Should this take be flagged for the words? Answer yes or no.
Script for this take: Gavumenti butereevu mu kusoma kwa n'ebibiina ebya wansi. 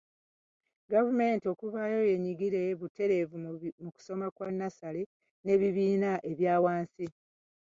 yes